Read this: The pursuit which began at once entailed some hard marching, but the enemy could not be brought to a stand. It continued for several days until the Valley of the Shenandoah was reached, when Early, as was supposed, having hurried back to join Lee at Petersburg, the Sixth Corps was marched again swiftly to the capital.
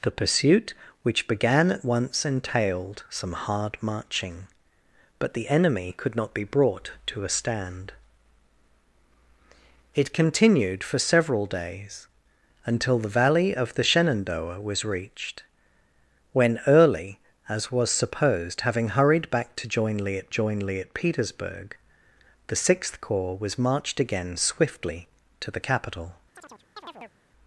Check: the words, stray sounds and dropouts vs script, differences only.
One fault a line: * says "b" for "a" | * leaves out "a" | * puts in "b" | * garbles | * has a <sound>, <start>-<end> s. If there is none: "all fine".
* puts in "join Lee at"
* has a chirp, 26.3-27.2 s